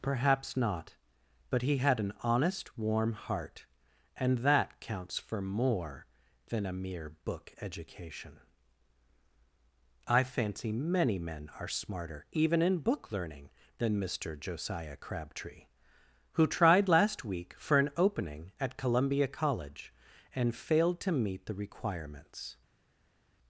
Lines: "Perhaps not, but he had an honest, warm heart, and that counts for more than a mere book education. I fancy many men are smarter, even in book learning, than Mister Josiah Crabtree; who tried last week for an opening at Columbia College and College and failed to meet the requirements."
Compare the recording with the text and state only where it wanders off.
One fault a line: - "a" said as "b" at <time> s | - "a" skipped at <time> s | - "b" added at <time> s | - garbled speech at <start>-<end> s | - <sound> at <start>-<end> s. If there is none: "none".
- "College and" skipped at 20.6 s